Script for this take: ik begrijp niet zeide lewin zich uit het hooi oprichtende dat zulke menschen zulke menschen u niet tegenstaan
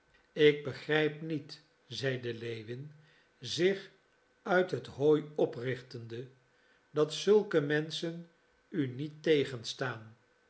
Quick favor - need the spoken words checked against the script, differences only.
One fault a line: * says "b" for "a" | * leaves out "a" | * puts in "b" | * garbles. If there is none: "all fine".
* leaves out "zulke menschen"